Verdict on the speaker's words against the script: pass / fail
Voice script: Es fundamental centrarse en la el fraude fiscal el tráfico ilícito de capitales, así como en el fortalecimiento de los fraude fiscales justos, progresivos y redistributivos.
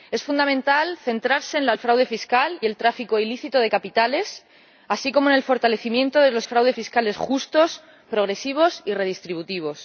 pass